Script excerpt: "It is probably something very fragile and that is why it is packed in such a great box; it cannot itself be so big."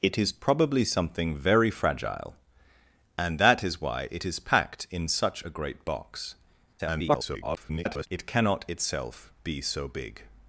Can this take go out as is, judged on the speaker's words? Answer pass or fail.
fail